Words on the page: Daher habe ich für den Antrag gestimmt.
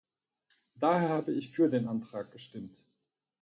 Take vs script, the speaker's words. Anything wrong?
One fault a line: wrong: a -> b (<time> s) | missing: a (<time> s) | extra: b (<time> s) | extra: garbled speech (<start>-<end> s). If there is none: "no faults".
no faults